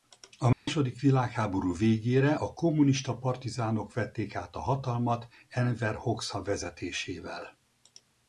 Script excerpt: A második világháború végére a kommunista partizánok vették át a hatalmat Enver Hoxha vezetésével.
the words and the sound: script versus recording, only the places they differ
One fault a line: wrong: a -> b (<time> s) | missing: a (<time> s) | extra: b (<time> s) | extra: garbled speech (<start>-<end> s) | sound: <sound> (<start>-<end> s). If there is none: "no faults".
sound: dropout (0.5-0.7 s)